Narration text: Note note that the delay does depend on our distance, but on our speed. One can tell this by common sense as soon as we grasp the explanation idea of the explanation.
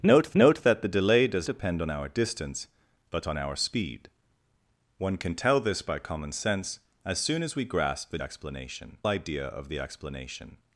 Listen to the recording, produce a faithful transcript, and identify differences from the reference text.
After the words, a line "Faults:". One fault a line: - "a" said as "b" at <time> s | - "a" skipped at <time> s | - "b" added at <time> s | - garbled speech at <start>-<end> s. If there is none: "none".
Note note that the delay does depend on our distance, but on our speed. One can tell this by common sense as soon as we grasp the explanation idea of the explanation.
Faults:
none